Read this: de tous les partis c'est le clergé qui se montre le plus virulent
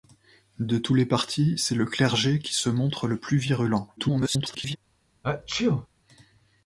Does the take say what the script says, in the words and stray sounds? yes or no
no